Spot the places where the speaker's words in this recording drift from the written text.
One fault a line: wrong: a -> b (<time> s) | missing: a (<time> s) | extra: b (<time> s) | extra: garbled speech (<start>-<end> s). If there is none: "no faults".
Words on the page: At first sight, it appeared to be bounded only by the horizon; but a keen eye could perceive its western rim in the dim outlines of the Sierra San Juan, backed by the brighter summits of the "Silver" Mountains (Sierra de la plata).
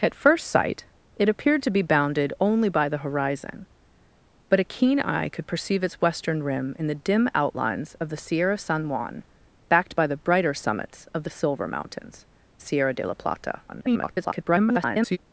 extra: garbled speech (13.7-15.2 s)